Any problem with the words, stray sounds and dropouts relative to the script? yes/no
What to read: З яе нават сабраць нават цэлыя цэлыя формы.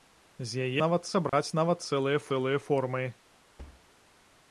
yes